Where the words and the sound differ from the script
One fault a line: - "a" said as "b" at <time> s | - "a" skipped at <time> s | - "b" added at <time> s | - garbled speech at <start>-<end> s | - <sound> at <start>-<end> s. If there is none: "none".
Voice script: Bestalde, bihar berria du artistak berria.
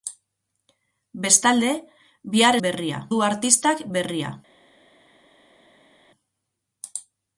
none